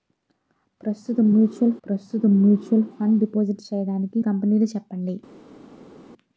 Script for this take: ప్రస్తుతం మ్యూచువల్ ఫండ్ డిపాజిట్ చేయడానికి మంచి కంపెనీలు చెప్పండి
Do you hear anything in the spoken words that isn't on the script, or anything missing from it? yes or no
yes